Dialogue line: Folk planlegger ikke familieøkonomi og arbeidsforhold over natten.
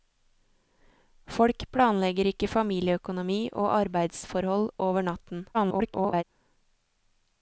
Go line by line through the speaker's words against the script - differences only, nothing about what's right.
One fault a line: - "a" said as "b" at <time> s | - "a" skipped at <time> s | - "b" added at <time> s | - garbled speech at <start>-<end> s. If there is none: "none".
- garbled speech at 5.5-6.2 s